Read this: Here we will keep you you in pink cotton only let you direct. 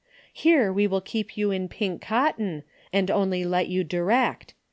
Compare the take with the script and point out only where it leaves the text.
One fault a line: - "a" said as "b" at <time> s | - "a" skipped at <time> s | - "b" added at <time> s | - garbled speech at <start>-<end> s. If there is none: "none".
- "you" skipped at 1.5 s
- "and" added at 2.9 s